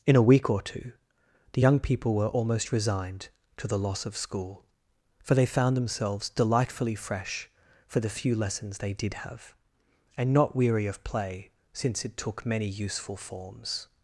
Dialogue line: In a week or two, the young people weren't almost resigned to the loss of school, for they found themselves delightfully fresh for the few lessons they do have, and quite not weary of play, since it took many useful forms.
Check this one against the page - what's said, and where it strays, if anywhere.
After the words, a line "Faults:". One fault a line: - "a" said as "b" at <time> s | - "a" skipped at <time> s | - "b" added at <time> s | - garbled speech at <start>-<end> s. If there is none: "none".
In a week or two, the young people were almost resigned to the loss of school, for they found themselves delightfully fresh for the few lessons they did have, and not weary of play, since it took many useful forms.
Faults:
- "weren't" said as "were" at 2.1 s
- "do" said as "did" at 8.9 s
- "quite" skipped at 10.3 s